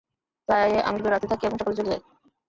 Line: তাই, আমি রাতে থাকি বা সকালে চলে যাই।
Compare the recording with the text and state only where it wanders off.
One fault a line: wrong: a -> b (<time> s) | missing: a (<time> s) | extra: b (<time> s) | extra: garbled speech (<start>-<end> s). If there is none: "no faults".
extra: শুধু (1.0 s)
wrong: বা -> এবং (1.4 s)